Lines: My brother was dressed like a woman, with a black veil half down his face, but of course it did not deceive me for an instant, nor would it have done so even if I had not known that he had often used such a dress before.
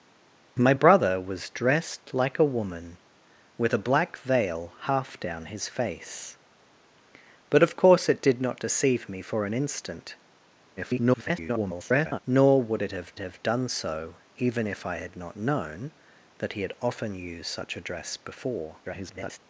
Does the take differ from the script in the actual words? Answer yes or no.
yes